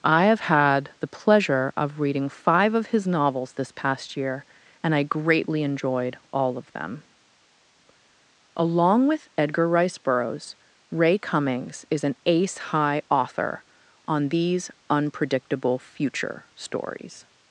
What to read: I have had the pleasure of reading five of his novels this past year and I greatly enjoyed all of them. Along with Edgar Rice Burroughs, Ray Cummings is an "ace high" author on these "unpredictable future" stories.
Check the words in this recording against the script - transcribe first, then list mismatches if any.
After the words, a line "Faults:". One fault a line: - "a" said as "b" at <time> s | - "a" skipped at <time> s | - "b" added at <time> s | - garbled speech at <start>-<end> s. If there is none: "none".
I have had the pleasure of reading five of his novels this past year and I greatly enjoyed all of them. Along with Edgar Rice Burroughs, Ray Cummings is an "ace high" author on these "unpredictable future" stories.
Faults:
none